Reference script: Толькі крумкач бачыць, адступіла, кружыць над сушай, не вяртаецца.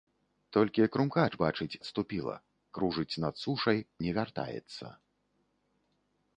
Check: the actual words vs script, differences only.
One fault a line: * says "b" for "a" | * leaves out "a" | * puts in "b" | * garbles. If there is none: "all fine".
all fine